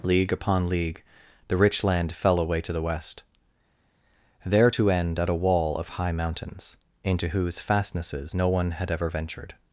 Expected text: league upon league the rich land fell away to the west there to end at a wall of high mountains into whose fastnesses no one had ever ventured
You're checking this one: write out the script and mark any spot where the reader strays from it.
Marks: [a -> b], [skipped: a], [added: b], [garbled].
league upon league the rich land fell away to the west there to end at a wall of high mountains into whose fastnesses no one had ever ventured